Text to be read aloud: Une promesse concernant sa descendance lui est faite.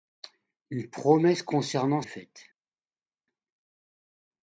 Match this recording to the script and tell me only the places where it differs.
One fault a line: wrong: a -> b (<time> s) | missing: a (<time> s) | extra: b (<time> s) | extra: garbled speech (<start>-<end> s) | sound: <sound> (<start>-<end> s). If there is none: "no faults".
missing: sa descendance lui (2.0 s)